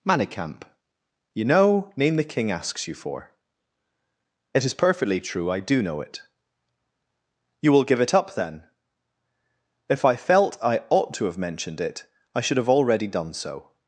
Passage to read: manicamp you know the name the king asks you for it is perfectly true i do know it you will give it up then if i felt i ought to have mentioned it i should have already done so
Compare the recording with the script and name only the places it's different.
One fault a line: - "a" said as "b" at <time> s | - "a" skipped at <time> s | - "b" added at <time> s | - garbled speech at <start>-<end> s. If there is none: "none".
- "the" skipped at 1.9 s